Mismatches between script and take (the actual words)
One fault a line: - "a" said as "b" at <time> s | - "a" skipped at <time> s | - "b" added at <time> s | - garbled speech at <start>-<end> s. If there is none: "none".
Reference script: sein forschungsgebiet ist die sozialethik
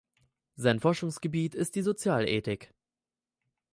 none